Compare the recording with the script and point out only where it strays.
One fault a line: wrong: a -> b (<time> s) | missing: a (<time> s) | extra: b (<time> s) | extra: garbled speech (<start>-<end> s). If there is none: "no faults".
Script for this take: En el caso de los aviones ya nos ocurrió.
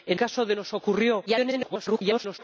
missing: el (0.2 s)
missing: los aviones ya (0.6 s)
extra: garbled speech (1.3-2.4 s)